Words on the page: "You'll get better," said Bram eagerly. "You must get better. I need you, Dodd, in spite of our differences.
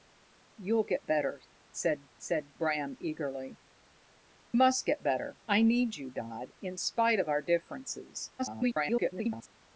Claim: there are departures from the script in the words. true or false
true